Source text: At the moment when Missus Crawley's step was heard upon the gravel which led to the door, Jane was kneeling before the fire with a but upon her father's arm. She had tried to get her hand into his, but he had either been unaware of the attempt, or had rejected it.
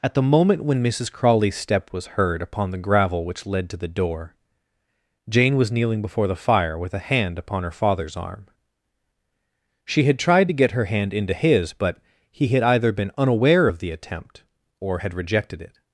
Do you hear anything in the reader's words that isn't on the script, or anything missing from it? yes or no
yes